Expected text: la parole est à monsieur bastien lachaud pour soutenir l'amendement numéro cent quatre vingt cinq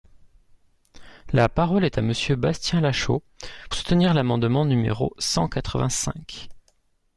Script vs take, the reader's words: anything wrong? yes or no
yes